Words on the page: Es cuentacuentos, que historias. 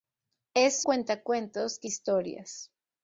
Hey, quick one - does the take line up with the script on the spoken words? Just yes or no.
yes